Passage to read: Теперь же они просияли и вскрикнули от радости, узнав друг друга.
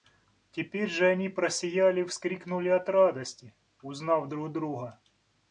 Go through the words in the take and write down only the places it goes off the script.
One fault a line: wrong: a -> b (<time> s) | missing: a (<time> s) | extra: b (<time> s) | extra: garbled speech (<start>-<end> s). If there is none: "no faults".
no faults